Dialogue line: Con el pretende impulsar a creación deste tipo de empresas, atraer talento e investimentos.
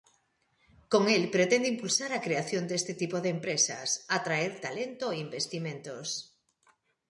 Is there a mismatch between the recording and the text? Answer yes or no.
no